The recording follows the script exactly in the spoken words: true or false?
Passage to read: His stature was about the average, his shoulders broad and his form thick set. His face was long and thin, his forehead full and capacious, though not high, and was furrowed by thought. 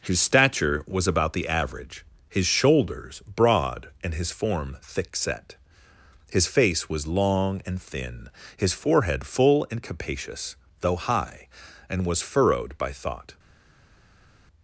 false